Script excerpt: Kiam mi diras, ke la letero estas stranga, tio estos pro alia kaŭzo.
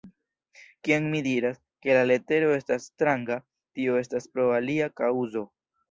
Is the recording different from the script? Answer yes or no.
yes